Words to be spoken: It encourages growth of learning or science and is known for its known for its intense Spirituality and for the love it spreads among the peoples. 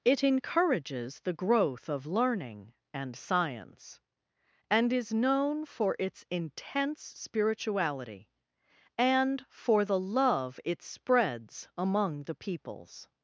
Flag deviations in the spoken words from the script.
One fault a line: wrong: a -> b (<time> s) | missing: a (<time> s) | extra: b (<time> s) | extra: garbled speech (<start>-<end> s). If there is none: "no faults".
extra: the (1.2 s)
wrong: or -> and (2.9 s)
missing: known for its (6.2 s)